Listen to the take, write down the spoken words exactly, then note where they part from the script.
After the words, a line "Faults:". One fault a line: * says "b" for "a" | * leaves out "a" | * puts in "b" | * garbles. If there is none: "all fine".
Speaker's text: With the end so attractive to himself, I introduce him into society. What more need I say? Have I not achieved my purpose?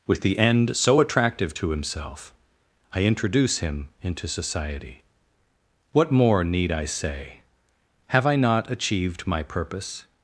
With the end so attractive to himself, I introduce him into society. What more need I say? Have I not achieved my purpose?
Faults:
all fine